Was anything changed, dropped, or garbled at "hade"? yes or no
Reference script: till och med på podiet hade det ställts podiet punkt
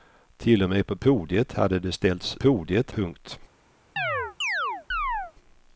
no